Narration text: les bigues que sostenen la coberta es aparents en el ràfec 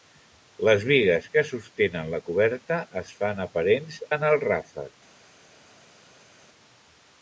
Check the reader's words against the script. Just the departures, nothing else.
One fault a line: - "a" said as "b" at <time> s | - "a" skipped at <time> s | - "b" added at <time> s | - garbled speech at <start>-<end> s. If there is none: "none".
- "fan" added at 3.2 s